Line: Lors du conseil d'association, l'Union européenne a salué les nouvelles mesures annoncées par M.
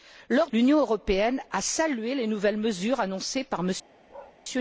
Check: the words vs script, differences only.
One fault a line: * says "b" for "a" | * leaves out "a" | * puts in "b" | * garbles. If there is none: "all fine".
* leaves out "du conseil d'association"